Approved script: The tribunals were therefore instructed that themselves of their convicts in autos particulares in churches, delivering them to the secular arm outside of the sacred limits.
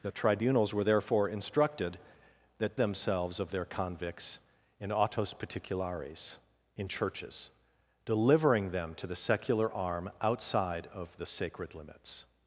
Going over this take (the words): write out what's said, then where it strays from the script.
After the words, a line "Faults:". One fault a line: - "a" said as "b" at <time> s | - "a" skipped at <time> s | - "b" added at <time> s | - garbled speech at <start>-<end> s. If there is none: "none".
The tribunals were therefore instructed that themselves of their convicts in autos particulares in churches, delivering them to the secular arm outside of the sacred limits.
Faults:
none